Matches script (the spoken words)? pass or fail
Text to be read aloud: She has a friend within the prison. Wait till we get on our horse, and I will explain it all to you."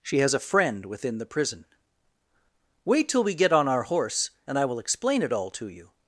pass